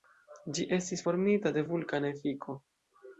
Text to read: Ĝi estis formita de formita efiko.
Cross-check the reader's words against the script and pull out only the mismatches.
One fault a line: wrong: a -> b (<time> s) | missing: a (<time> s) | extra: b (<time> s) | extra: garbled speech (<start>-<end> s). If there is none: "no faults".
wrong: formita -> vulkana (1.7 s)